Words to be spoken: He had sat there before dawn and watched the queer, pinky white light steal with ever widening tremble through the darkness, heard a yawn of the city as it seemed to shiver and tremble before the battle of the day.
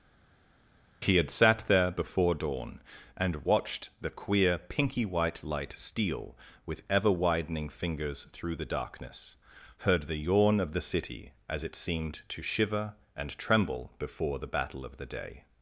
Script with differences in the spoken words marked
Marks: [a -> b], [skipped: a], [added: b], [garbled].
He had sat there before dawn and watched the queer, pinky white light steal with ever widening [tremble -> fingers] through the darkness, heard [a -> the] yawn of the city as it seemed to shiver and tremble before the battle of the day.